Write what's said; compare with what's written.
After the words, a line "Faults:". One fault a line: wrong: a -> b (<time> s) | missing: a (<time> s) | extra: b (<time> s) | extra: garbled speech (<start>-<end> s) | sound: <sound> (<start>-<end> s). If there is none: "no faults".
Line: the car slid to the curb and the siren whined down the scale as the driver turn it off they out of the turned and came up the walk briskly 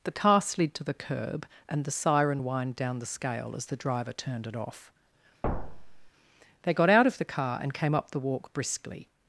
the car slid to the curb and the siren whined down the scale as the driver turned it off they got out of the car and came up the walk briskly
Faults:
wrong: turn -> turned (4.1 s)
sound: thud (5.4-6.1 s)
extra: got (6.7 s)
wrong: turned -> car (7.2 s)